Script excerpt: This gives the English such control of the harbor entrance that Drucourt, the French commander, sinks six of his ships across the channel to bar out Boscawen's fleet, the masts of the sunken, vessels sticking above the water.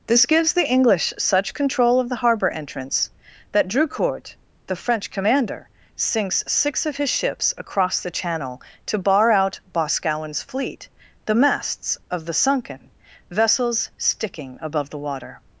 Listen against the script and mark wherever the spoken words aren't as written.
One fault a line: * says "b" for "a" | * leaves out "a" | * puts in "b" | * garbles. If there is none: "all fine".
all fine